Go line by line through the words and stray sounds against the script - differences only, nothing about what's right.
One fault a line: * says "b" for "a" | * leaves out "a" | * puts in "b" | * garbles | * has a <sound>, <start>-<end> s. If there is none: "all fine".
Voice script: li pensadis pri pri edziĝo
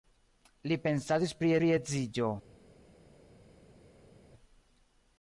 all fine